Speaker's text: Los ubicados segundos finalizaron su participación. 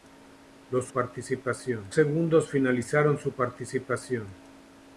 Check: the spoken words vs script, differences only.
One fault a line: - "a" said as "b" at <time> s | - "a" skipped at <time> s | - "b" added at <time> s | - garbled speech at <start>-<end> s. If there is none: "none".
- "ubicados" said as "participación" at 0.9 s